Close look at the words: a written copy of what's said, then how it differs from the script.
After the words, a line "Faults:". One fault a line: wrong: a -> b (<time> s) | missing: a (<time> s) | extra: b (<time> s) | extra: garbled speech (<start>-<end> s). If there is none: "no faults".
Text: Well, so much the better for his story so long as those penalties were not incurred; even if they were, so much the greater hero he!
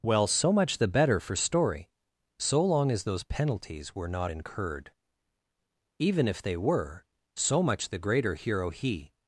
Well, so much the better for story so long as those penalties were not incurred; even if they were, so much the greater hero he!
Faults:
missing: his (1.4 s)